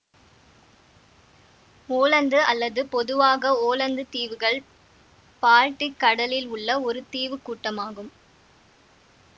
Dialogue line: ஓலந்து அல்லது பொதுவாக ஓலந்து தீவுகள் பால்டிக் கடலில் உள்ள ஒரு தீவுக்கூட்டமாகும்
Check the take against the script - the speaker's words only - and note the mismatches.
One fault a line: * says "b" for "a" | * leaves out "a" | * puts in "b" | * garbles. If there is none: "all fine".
all fine